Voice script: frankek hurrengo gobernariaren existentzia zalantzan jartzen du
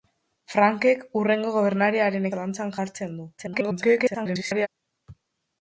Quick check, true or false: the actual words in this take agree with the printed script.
false